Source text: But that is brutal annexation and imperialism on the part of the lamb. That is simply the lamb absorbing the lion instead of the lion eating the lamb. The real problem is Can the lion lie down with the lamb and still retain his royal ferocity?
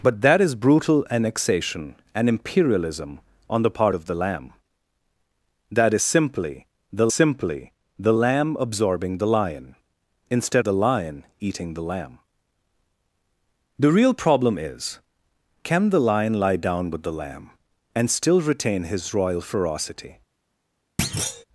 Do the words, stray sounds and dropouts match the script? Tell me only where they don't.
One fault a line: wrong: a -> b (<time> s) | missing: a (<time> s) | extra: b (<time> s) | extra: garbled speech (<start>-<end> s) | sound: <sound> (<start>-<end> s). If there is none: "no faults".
extra: simply the (7.1 s)
missing: of (10.6 s)
sound: thud (21.0-21.4 s)